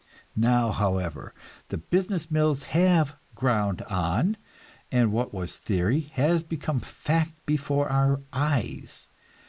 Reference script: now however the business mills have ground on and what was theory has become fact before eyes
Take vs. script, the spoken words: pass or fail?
fail